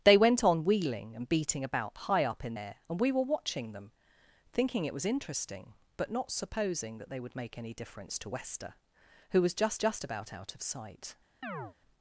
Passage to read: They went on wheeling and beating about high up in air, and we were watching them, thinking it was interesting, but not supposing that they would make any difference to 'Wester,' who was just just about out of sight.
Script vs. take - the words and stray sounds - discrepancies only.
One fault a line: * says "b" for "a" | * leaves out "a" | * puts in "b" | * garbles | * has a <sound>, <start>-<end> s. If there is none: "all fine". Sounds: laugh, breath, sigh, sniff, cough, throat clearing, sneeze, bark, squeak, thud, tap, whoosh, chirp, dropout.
* has a chirp, 11.4-11.7 s